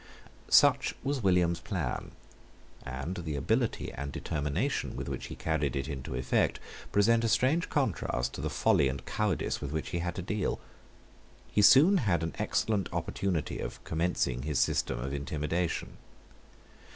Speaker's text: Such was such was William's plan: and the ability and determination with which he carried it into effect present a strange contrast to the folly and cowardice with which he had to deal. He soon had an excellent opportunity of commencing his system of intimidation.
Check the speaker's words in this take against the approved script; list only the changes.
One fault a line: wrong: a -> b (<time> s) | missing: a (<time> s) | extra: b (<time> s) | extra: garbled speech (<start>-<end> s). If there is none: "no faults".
missing: such was (1.2 s)